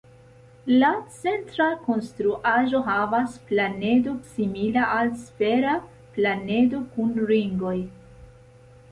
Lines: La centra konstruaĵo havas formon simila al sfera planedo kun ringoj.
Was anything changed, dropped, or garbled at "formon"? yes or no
yes